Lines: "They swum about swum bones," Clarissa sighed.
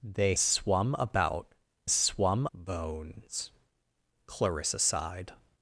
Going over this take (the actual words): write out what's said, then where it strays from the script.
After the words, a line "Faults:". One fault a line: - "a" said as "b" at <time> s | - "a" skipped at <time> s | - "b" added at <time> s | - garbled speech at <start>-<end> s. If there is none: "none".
"They swum about swum bones," Clarissa sighed.
Faults:
none